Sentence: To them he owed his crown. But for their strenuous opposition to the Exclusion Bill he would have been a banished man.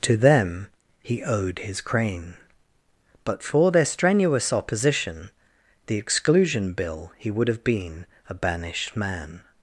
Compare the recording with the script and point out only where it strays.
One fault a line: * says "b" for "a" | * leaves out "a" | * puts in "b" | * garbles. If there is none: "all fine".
* says "crane" for "crown"
* leaves out "to"